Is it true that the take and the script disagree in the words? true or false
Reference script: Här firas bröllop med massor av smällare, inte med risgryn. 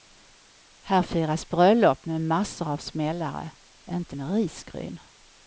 false